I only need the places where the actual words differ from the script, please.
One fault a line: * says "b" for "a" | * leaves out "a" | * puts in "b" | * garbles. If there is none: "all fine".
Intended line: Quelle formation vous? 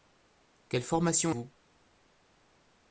all fine